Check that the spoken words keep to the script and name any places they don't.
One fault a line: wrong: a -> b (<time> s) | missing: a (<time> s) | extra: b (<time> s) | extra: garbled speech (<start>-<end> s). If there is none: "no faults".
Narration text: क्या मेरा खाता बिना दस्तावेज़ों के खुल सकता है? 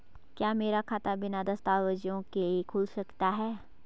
no faults